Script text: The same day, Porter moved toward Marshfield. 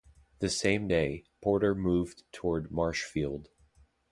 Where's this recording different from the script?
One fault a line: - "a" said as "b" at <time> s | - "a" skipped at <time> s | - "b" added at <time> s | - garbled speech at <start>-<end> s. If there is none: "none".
none